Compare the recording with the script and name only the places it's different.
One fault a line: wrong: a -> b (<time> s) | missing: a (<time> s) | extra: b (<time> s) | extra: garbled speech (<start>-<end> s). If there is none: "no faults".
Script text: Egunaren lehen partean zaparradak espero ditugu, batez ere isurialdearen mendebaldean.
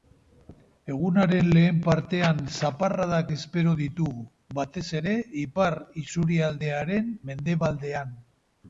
extra: ipar (5.4 s)